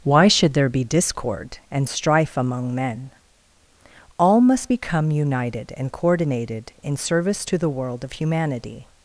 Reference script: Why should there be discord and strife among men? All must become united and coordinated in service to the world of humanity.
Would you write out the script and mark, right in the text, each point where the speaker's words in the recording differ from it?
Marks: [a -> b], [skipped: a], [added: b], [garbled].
Why should there be discord and strife among men? All must become united and coordinated in service to the world of humanity.